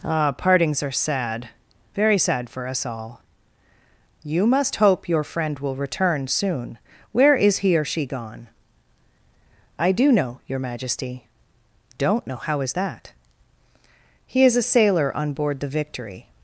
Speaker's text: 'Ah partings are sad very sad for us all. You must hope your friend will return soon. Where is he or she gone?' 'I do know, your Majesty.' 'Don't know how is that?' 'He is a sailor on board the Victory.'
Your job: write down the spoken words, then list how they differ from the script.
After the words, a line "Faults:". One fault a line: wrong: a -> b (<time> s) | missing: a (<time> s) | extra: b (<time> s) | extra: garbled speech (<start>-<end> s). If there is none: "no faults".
'Ah partings are sad very sad for us all. You must hope your friend will return soon. Where is he or she gone?' 'I do know, your Majesty.' 'Don't know how is that?' 'He is a sailor on board the Victory.'
Faults:
no faults